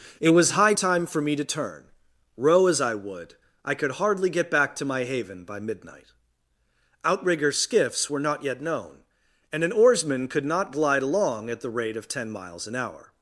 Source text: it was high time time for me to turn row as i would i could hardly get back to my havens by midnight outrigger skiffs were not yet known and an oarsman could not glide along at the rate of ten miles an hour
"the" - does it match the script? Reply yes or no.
yes